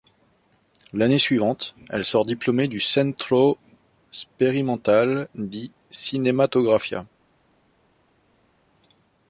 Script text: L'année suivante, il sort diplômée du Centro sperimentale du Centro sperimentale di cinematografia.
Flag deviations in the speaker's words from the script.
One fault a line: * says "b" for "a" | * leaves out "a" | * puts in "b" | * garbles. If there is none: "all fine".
* says "elle" for "il"
* leaves out "du Centro sperimentale"